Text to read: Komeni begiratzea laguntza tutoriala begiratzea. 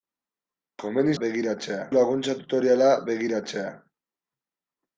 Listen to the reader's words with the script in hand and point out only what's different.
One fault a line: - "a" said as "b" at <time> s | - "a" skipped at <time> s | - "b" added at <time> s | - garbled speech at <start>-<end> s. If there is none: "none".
none